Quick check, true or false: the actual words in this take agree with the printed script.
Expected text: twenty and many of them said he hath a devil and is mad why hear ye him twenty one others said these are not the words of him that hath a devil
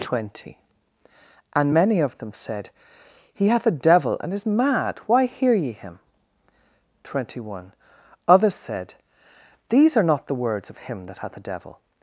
true